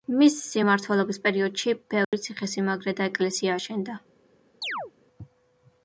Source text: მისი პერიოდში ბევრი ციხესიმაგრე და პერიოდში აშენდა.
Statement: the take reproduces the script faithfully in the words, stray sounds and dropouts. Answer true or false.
false